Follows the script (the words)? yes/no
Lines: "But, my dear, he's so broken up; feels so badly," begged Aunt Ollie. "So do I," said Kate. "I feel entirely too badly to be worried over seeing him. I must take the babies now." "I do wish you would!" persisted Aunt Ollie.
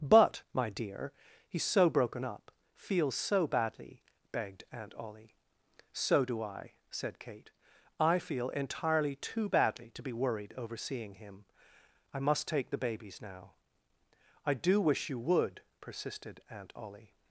yes